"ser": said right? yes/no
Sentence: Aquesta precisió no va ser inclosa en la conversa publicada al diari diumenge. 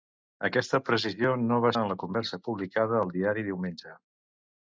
no